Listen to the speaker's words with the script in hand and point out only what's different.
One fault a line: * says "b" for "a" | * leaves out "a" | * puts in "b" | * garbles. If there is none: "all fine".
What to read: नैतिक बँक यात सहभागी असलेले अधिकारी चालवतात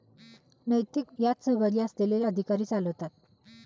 * leaves out "बँक"